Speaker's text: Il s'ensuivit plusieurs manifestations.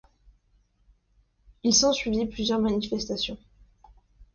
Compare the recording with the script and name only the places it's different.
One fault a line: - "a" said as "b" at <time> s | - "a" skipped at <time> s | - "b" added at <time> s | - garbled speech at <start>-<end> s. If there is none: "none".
none